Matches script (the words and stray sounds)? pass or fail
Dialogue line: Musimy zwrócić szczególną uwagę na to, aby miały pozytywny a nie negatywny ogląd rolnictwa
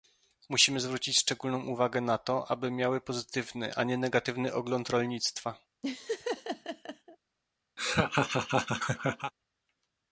fail